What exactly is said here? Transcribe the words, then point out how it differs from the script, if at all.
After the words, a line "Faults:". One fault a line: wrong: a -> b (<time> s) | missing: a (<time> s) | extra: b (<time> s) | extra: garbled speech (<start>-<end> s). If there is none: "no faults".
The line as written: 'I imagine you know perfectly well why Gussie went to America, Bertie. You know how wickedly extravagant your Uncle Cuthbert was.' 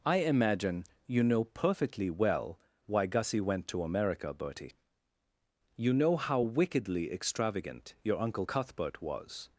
'I imagine you know perfectly well why Gussie went to America, Bertie. You know how wickedly extravagant your Uncle Cuthbert was.'
Faults:
no faults